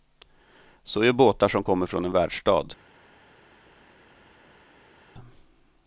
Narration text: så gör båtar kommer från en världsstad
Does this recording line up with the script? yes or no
no